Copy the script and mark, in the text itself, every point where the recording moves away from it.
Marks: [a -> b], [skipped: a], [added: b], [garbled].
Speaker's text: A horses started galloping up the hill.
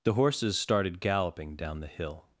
[A -> The] horses started galloping [up -> down] the hill.